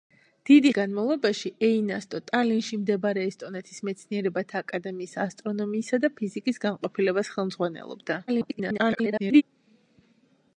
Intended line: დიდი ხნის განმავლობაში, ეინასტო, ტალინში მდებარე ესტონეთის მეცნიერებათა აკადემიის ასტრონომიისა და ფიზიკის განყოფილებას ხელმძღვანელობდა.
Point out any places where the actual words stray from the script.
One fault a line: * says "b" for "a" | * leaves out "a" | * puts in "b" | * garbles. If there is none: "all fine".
* leaves out "ხნის"
* garbles